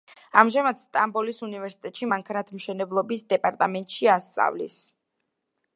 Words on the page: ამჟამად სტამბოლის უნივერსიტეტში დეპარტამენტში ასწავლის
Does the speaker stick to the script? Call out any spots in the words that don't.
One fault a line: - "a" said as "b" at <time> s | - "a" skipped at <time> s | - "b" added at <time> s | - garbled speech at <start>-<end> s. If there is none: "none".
- "მანქანათმშენებლობის" added at 2.1 s